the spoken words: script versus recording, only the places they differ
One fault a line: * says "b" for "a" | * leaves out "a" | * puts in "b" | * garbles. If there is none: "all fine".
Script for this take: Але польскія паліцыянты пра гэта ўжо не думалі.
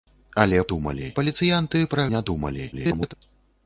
* says "думалі" for "польскія"
* leaves out "гэта ўжо"
* garbles